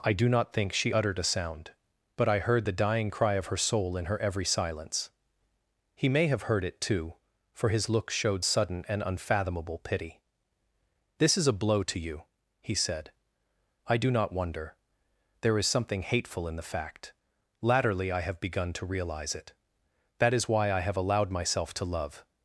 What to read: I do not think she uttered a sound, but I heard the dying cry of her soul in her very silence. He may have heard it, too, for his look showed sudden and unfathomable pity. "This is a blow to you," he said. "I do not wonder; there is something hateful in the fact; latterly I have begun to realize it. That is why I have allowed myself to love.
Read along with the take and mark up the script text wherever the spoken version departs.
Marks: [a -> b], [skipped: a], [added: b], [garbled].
I do not think she uttered a sound, but I heard the dying cry of her soul in her [very -> every] silence. He may have heard it, too, for his look showed sudden and unfathomable pity. "This is a blow to you," he said. "I do not wonder; there is something hateful in the fact; latterly I have begun to realize it. That is why I have allowed myself to love.